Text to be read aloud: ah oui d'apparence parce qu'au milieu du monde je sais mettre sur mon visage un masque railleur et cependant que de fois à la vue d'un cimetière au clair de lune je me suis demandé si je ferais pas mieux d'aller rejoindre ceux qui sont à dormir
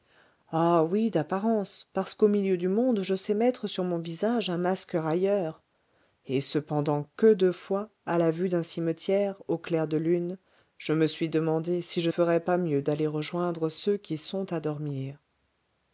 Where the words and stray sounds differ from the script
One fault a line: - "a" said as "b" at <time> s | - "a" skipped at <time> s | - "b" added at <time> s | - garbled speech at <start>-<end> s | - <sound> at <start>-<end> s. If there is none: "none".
none